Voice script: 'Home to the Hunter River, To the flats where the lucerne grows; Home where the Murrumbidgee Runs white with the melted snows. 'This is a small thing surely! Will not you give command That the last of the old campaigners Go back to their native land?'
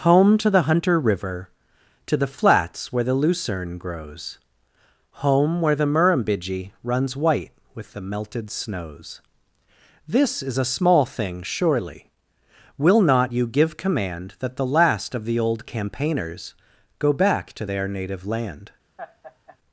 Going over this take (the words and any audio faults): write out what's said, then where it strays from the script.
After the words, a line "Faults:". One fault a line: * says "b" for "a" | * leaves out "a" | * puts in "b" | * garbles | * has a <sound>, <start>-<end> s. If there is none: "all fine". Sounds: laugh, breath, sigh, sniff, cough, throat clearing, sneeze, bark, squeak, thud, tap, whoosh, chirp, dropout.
'Home to the Hunter River, To the flats where the lucerne grows; Home where the Murrumbidgee Runs white with the melted snows. 'This is a small thing surely! Will not you give command That the last of the old campaigners Go back to their native land?'
Faults:
* has a laugh, 19.0-19.6 s